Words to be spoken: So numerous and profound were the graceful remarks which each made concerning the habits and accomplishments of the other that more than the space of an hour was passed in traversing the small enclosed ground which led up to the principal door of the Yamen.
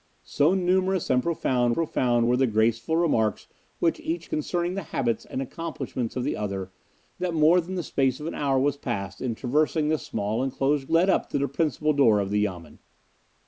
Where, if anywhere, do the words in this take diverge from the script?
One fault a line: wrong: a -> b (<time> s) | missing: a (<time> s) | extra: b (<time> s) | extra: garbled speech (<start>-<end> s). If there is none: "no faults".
extra: profound (1.7 s)
missing: made (4.3 s)
missing: ground which (10.9 s)